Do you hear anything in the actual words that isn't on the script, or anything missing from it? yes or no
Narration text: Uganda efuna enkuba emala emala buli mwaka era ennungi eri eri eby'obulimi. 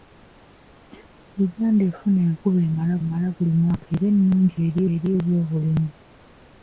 no